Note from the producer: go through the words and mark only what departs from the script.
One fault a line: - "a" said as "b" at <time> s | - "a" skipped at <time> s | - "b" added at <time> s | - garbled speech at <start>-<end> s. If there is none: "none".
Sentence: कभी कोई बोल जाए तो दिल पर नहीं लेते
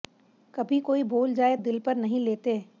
- "तो" skipped at 1.6 s